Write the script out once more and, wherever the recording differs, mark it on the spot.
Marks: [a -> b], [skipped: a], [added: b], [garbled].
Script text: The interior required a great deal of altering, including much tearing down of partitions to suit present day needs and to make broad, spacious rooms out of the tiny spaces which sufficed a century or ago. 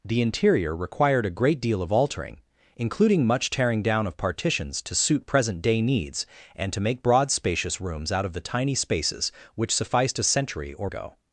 The interior required a great deal of altering, including much tearing down of partitions to suit present day needs and to make broad, spacious rooms out of the tiny spaces which sufficed a century or ago.